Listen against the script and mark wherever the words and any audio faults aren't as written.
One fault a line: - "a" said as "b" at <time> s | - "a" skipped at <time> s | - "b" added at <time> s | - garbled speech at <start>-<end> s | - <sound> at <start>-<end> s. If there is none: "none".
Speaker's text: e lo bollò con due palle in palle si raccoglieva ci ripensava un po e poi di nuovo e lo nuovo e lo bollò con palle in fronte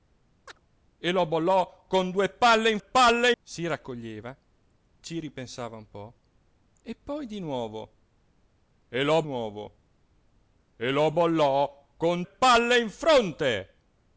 - chirp at 0.5-0.6 s